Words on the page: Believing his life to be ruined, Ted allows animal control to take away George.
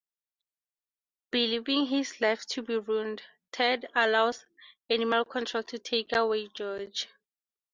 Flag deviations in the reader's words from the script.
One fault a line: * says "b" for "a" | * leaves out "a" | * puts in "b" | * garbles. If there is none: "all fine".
all fine